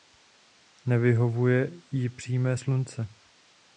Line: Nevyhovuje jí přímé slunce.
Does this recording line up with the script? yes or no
yes